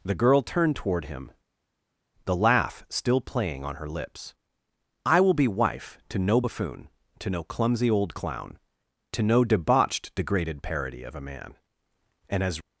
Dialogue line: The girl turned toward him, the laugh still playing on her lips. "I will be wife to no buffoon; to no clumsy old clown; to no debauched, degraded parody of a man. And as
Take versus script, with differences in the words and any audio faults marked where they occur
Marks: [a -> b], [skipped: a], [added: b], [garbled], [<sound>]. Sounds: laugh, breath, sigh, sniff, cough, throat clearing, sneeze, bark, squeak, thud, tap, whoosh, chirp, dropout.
The girl turned toward him, the laugh still playing on her lips. "I will be wife to no buffoon; to no clumsy old clown; to no debauched, degraded parody of a man. And as